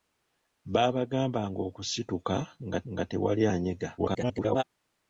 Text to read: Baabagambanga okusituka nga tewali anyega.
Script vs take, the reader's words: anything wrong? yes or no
yes